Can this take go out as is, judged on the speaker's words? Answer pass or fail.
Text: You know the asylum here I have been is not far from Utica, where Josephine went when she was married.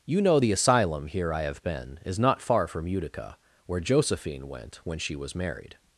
pass